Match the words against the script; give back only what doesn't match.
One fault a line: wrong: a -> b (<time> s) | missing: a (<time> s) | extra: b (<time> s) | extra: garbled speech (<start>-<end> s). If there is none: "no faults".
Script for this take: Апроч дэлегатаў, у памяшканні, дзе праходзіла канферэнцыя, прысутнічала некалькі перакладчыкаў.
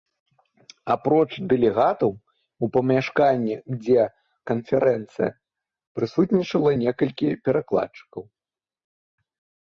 missing: праходзіла (4.0 s)